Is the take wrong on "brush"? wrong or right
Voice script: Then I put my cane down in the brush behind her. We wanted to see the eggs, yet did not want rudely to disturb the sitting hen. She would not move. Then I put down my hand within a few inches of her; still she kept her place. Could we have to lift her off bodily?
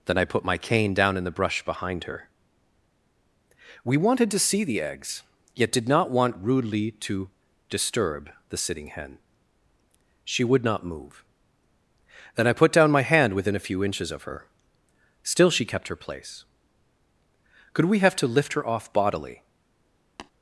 right